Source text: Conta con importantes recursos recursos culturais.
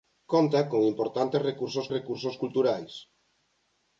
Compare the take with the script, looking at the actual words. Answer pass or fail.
pass